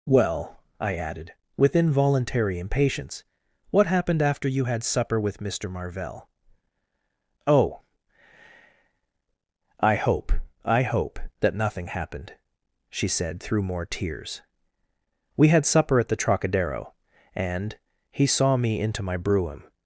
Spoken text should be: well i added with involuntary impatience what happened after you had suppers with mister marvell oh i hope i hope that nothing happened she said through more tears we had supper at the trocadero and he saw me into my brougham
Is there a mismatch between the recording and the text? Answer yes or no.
yes